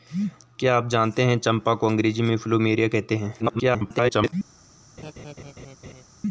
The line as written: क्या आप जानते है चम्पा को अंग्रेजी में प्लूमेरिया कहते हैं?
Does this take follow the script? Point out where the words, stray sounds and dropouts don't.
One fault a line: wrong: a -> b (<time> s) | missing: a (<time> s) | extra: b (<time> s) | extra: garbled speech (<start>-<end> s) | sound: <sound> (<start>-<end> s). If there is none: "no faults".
extra: garbled speech (3.4-4.3 s)
sound: laugh (5.0-6.0 s)